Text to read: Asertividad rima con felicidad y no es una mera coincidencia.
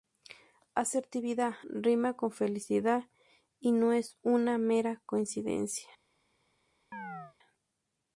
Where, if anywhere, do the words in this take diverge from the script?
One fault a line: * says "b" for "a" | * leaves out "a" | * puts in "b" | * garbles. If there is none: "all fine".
all fine